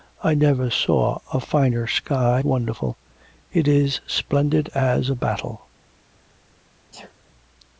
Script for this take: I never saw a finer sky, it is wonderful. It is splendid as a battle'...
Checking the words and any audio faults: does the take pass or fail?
fail